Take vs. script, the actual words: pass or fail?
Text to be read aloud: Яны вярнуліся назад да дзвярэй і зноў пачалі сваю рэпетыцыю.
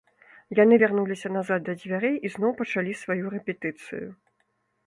pass